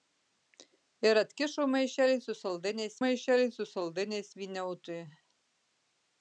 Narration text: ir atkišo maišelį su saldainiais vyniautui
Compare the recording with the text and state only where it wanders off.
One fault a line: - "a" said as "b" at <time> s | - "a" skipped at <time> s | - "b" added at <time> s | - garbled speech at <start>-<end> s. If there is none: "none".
- "maišelį su saldainiais" added at 3.0 s